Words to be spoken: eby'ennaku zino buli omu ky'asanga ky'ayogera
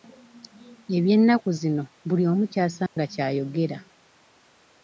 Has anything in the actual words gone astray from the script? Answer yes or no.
no